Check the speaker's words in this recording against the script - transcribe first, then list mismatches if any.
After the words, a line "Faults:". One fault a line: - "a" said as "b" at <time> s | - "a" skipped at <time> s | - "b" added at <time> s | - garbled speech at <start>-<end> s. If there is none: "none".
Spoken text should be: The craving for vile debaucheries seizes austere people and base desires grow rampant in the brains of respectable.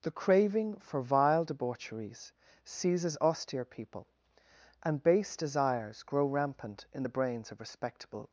The craving for vile debaucheries seizes austere people and base desires grow rampant in the brains of respectable.
Faults:
none